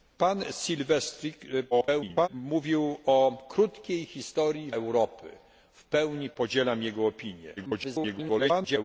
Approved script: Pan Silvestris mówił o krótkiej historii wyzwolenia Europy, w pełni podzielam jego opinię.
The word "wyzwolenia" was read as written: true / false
false